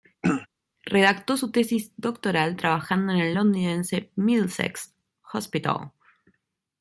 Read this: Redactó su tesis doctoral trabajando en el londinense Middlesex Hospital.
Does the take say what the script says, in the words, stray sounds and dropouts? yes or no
no